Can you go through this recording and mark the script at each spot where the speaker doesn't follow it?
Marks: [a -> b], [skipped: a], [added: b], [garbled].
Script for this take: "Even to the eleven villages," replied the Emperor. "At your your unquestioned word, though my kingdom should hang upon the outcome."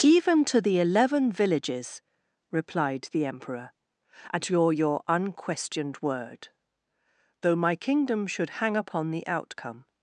"Even to the eleven villages," replied the Emperor. "At your your unquestioned word, though my kingdom should hang upon the outcome."